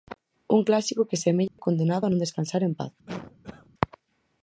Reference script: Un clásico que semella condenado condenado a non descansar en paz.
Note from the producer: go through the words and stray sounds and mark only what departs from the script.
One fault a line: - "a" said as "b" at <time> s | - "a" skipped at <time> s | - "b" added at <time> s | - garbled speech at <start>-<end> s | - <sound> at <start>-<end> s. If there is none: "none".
- dropout at 1.5-1.6 s
- "condenado" skipped at 2.0 s
- cough at 3.1-3.7 s